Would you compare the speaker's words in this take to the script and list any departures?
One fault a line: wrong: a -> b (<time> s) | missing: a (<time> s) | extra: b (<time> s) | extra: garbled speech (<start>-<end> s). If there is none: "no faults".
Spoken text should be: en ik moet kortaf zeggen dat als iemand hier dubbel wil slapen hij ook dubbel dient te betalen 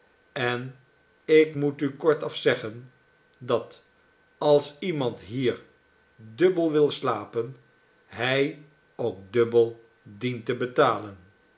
extra: u (1.8 s)